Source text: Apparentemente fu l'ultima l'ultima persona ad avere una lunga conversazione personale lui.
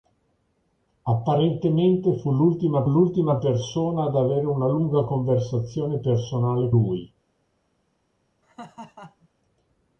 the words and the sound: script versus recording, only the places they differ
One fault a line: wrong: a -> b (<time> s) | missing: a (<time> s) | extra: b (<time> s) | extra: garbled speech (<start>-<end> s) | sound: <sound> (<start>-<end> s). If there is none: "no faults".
sound: laugh (8.4-9.3 s)